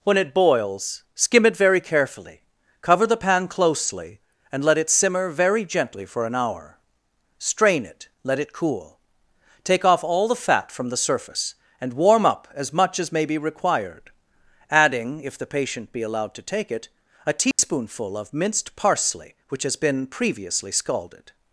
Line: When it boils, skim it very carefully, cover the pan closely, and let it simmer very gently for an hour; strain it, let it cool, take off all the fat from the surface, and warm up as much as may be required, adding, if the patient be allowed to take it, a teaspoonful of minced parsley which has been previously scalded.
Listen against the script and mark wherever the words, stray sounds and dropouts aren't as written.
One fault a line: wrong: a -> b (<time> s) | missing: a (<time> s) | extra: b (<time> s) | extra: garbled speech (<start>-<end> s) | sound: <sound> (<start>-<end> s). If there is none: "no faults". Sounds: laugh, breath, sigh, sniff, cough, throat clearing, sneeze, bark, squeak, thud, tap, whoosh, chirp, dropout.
sound: dropout (17.5-17.6 s)